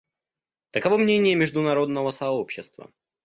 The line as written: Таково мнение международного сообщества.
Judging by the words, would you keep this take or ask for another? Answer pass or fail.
pass